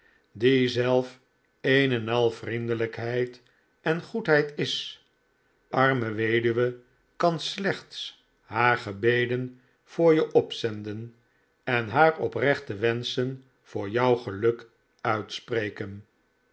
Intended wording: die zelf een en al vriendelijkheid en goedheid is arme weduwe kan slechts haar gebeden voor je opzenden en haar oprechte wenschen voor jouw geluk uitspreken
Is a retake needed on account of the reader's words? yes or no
no